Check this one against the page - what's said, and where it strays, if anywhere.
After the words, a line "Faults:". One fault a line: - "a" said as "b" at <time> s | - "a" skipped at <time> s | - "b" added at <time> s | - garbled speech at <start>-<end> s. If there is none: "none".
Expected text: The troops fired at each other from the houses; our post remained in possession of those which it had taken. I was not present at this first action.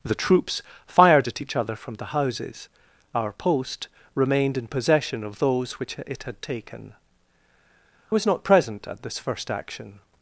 The troops fired at each other from the houses; our post remained in possession of those which it had taken. was not present at this first action.
Faults:
- "I" skipped at 7.0 s